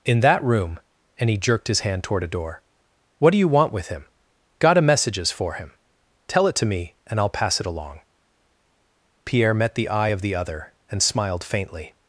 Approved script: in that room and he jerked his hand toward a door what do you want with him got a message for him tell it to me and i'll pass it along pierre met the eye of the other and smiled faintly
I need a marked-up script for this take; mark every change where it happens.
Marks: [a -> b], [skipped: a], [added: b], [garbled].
in that room and he jerked his hand toward a door what do you want with him got a [message -> messages] for him tell it to me and i'll pass it along pierre met the eye of the other and smiled faintly